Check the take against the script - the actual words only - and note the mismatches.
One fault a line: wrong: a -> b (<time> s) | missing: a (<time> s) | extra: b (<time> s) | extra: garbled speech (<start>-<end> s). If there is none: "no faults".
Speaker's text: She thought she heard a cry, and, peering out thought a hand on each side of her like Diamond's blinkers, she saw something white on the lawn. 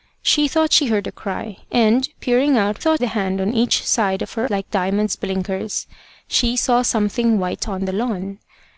no faults